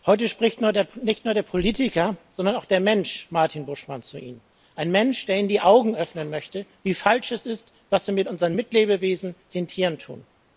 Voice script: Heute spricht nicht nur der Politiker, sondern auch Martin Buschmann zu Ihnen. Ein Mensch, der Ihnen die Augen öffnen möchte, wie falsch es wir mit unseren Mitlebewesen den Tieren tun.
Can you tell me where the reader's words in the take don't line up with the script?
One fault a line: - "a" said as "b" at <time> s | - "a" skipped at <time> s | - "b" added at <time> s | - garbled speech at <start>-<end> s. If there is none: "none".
- "der Mensch" added at 2.6 s
- "ist was" added at 7.5 s